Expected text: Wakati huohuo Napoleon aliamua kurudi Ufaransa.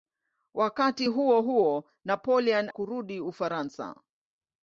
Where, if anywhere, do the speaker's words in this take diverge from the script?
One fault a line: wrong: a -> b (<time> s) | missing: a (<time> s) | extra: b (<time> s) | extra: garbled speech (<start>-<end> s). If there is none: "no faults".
missing: aliamua (2.7 s)